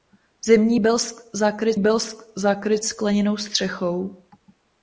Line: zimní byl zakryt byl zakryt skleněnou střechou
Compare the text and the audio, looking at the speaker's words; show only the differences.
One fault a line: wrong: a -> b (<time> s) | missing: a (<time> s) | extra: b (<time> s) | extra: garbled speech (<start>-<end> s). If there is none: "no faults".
no faults